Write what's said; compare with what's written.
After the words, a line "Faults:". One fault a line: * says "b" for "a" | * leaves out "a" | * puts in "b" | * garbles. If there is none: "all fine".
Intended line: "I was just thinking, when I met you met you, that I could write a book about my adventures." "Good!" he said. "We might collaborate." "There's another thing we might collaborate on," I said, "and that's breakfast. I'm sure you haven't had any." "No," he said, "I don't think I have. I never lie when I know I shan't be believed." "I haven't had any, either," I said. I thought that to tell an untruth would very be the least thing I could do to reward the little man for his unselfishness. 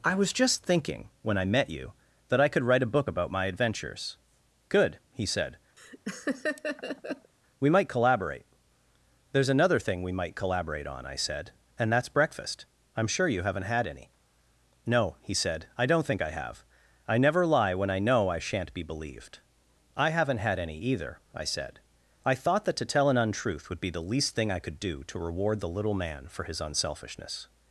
"I was just thinking, when I met you, that I could write a book about my adventures." "Good!" he said. "We might collaborate." "There's another thing we might collaborate on," I said, "and that's breakfast. I'm sure you haven't had any." "No," he said, "I don't think I have. I never lie when I know I shan't be believed." "I haven't had any, either," I said. I thought that to tell an untruth would be the least thing I could do to reward the little man for his unselfishness.
Faults:
* leaves out "met you"
* leaves out "very"